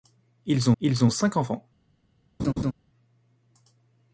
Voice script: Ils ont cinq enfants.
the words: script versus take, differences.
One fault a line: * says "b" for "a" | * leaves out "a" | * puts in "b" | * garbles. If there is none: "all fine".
* puts in "ils"